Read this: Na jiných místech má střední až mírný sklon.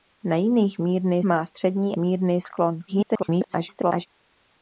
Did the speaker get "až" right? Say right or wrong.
wrong